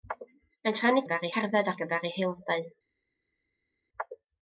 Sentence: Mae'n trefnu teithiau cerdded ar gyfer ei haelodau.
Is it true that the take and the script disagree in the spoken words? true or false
true